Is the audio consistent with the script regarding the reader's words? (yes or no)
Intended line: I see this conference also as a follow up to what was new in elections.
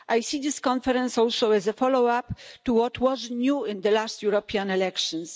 no